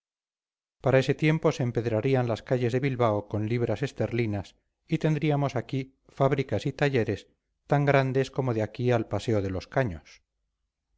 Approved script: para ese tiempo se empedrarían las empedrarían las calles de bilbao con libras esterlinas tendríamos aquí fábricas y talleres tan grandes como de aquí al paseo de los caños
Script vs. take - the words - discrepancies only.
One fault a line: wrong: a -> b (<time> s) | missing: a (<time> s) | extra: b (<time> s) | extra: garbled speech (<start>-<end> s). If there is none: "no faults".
missing: empedrarían las (2.4 s)
extra: y (4.9 s)